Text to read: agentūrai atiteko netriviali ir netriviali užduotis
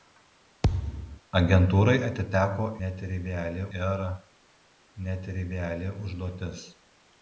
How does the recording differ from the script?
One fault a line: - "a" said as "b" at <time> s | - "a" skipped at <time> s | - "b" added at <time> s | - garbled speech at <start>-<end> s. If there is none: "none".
none